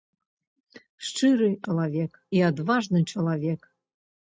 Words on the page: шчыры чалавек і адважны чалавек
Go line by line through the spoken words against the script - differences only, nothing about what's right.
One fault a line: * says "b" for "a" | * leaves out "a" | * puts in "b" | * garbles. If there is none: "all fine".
all fine